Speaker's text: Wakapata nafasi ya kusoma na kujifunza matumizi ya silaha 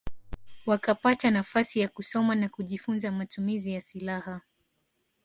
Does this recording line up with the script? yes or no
yes